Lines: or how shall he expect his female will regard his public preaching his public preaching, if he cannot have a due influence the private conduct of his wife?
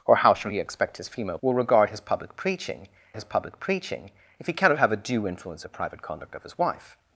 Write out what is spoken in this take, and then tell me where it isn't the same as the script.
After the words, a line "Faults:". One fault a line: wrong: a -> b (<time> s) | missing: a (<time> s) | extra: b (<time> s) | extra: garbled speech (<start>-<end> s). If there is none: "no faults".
or how shall he expect his female will regard his public preaching his public preaching, if he cannot have a due influence the private conduct of his wife?
Faults:
no faults